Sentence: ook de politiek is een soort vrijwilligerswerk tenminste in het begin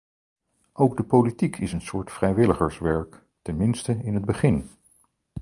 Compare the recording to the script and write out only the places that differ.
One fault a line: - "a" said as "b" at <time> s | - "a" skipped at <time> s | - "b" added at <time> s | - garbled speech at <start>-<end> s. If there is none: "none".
none